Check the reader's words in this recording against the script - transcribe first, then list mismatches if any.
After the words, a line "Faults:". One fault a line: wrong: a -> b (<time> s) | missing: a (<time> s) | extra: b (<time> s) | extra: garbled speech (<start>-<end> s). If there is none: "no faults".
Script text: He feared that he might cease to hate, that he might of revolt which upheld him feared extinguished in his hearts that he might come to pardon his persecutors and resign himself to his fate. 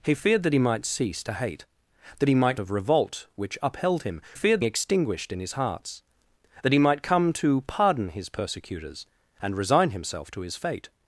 He feared that he might cease to hate, that he might of revolt which upheld him feared extinguished in his hearts that he might come to pardon his persecutors and resign himself to his fate.
Faults:
no faults